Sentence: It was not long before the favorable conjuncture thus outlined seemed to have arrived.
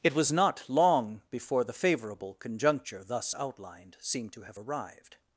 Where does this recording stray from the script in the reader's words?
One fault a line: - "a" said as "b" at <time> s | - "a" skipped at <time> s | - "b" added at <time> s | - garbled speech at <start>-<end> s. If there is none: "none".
none